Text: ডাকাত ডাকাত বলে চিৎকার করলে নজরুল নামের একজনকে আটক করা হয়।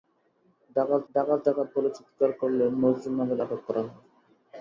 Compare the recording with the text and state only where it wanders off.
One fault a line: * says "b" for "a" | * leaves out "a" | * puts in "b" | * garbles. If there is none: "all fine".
* puts in "ডাকাত"
* leaves out "একজনকে"